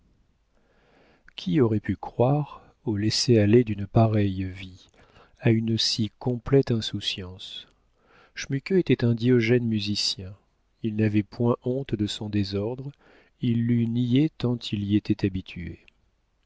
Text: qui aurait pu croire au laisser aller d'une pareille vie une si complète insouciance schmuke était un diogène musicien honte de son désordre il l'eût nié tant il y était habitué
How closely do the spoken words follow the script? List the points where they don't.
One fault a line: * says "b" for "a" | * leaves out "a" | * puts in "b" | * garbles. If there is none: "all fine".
* puts in "à"
* puts in "il n'avait point"